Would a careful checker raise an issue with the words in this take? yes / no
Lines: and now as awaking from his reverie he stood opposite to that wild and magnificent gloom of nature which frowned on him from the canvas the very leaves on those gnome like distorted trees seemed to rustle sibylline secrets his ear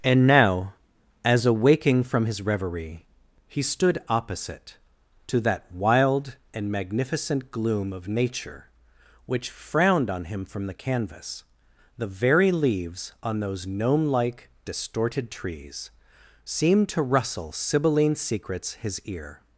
no